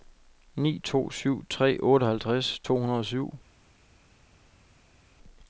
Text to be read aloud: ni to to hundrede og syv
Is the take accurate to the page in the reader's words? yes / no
no